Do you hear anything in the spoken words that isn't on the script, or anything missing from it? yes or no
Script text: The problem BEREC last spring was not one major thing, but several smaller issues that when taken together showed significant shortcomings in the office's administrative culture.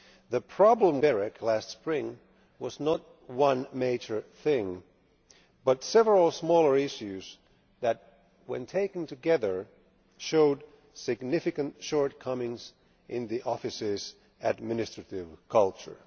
no